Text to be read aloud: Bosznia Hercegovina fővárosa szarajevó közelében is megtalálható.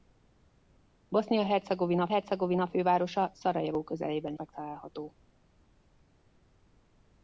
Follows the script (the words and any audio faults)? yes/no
no